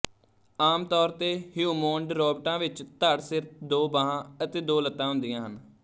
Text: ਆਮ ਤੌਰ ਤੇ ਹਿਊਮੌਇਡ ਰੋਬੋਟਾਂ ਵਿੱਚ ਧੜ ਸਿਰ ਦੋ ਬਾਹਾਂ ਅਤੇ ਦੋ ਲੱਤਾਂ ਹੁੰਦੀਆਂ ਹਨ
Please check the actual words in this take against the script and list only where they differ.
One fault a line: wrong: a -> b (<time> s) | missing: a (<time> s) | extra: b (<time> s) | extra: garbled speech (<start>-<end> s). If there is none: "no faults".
no faults